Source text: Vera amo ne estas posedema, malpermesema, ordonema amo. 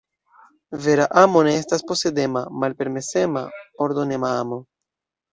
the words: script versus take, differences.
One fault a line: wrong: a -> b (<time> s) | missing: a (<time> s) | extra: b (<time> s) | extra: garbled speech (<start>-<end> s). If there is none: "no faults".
no faults